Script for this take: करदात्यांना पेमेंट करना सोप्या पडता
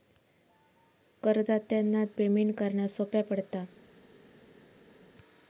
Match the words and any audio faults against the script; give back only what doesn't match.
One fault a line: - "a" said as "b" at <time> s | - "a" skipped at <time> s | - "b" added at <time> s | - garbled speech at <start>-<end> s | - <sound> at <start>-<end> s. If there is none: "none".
none